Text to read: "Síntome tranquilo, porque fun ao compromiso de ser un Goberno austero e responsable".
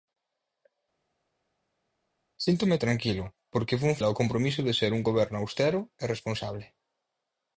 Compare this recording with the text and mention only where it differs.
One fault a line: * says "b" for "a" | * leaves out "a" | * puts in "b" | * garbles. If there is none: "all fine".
all fine